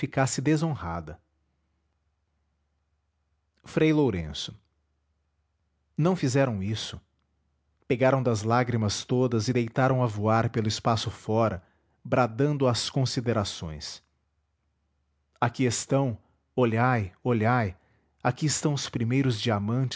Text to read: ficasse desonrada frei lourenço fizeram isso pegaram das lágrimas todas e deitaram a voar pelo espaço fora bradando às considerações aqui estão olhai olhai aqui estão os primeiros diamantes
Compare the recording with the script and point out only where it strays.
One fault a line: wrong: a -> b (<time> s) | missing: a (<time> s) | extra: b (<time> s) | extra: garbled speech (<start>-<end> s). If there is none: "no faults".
extra: não (6.0 s)